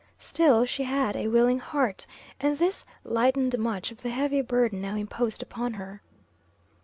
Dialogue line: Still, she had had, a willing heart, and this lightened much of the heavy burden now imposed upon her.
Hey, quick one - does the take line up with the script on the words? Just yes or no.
no